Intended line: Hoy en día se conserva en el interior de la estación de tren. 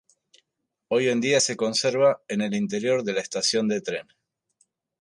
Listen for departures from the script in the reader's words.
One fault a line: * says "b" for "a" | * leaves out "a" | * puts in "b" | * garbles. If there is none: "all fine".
all fine